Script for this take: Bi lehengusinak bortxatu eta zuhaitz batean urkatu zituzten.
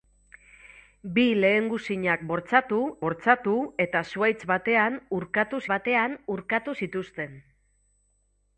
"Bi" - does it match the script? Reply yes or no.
yes